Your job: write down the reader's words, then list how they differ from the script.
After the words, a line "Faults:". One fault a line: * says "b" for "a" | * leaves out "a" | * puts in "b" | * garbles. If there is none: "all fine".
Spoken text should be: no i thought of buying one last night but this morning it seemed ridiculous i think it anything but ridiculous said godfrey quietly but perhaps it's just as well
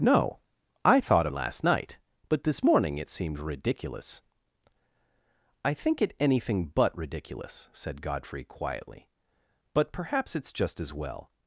no i thought last night but this morning it seemed ridiculous i think it anything but ridiculous said godfrey quietly but perhaps it's just as well
Faults:
* leaves out "of buying one"